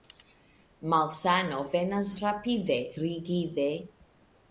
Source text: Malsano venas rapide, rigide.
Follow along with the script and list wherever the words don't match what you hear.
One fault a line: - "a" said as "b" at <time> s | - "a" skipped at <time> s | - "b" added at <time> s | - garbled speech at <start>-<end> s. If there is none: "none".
none